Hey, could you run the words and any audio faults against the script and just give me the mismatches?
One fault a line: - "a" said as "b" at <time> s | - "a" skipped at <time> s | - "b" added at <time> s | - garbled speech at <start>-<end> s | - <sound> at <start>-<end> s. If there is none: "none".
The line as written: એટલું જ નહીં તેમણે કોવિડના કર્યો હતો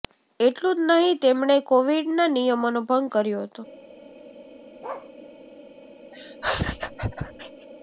- "નિયમોનો ભંગ" added at 2.3 s
- bark at 4.8-5.1 s
- laugh at 6.1-7.7 s